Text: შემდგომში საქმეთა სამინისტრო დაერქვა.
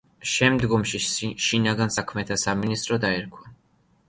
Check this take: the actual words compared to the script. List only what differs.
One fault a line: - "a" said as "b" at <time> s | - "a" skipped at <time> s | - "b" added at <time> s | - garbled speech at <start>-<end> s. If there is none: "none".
- "შინაგან" added at 1.5 s